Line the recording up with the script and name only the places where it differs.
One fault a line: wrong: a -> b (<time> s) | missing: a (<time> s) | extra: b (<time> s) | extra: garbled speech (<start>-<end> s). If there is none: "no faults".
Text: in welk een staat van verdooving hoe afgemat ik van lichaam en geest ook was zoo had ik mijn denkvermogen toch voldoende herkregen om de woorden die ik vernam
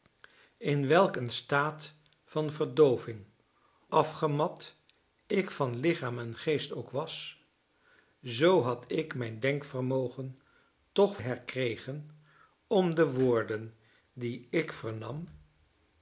missing: hoe (3.2 s)
missing: voldoende (11.2 s)